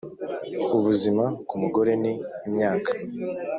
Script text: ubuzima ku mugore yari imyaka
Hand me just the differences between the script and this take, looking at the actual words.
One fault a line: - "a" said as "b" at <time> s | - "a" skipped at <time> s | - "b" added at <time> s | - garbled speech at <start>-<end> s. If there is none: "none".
- "yari" said as "ni" at 2.0 s